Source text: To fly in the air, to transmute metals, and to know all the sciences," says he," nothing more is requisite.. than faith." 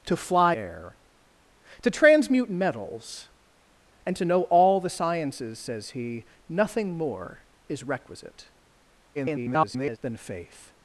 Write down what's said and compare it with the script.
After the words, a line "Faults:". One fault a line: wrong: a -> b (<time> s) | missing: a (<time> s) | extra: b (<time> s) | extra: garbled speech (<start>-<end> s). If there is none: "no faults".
To fly air, to transmute metals, and to know all the sciences," says he," nothing more is requisite.. [garbled] than faith."
Faults:
missing: in the (0.6 s)
extra: garbled speech (9.1-10.0 s)